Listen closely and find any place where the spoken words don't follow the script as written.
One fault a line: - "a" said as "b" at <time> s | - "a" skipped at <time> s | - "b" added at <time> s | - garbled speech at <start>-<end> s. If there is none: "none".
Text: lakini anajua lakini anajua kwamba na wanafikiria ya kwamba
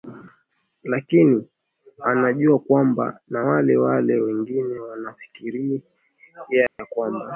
- "lakini anajua kwamba na" said as "kwamba na wale wale wengine" at 2.6 s